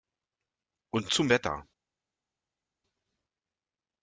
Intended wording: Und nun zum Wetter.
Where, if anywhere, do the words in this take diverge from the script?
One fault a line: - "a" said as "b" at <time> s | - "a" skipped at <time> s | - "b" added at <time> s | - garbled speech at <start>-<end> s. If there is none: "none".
- "nun" skipped at 1.1 s